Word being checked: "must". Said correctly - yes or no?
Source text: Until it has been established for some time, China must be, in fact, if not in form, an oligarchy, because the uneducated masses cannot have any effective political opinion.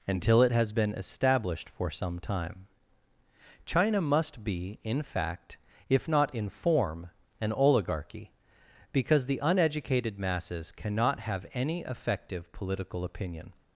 yes